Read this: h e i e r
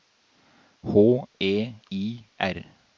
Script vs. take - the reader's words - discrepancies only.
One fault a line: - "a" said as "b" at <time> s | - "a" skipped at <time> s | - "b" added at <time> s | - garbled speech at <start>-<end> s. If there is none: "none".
- "e" skipped at 2.3 s